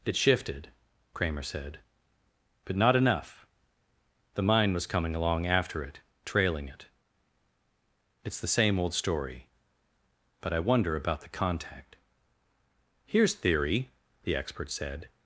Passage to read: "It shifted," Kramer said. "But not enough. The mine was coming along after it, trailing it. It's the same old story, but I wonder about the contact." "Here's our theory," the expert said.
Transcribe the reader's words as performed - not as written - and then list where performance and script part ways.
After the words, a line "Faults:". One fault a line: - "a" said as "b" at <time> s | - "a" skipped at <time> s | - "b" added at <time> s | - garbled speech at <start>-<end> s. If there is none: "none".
"It shifted," Kramer said. "But not enough. The mine was coming along after it, trailing it. It's the same old story, but I wonder about the contact." "Here's theory," the expert said.
Faults:
- "our" skipped at 13.3 s